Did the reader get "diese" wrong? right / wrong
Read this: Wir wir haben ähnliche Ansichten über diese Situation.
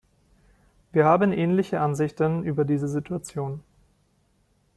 right